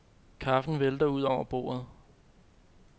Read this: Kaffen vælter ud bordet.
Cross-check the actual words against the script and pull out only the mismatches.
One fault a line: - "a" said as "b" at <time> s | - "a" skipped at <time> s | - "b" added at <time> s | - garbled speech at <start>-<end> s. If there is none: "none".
- "over" added at 1.2 s